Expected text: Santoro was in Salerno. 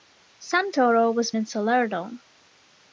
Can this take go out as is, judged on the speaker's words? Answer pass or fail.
pass